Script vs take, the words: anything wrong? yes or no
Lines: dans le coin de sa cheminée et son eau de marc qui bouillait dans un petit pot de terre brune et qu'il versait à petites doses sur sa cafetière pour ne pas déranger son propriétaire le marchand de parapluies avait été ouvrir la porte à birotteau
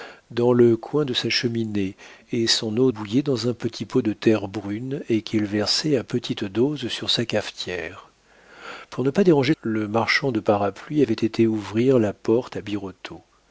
yes